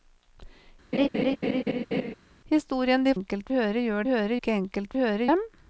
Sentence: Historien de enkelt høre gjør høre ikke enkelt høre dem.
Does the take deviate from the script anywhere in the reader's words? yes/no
no